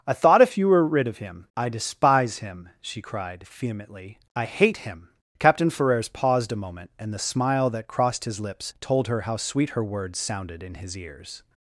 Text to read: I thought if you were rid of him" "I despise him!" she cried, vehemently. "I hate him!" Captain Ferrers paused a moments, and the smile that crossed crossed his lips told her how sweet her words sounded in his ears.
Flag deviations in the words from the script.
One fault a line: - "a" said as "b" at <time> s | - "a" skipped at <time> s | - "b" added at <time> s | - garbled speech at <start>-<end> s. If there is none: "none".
- "moments" said as "moment" at 6.6 s
- "crossed" skipped at 8.2 s